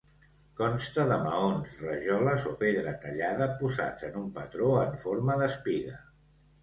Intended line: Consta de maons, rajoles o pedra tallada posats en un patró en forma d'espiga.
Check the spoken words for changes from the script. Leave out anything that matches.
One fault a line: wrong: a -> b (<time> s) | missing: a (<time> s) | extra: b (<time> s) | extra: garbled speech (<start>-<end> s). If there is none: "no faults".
no faults